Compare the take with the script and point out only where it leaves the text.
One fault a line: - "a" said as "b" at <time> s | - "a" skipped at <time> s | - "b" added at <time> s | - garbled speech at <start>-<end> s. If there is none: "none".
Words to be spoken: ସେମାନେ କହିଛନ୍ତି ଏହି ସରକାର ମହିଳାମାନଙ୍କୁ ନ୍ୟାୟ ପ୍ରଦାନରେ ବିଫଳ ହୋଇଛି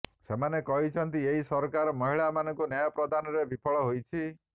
none